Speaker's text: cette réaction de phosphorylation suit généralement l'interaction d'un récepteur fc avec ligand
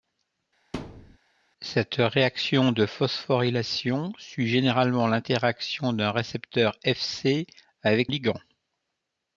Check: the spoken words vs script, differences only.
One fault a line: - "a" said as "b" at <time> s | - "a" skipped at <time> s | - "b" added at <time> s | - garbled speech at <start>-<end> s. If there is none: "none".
none